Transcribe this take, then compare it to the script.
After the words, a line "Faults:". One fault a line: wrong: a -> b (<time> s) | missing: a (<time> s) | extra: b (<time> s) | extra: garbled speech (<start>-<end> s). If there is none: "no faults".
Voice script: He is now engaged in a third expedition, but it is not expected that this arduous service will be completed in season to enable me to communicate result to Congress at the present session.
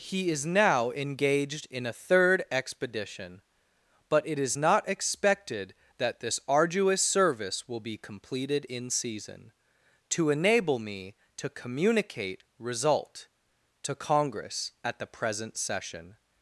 He is now engaged in a third expedition, but it is not expected that this arduous service will be completed in season to enable me to communicate result to Congress at the present session.
Faults:
no faults